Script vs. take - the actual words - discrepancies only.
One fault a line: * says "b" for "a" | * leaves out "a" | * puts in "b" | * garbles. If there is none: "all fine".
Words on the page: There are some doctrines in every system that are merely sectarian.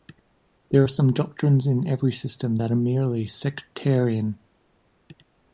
all fine